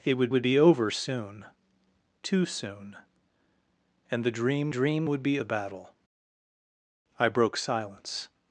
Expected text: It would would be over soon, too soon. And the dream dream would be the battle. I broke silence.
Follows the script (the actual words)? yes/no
yes